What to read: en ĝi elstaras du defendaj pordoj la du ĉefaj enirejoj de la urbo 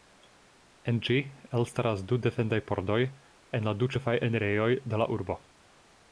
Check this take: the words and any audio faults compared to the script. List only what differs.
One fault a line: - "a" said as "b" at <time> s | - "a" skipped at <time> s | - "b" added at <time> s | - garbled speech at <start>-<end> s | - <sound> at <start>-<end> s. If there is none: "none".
- "en" added at 3.6 s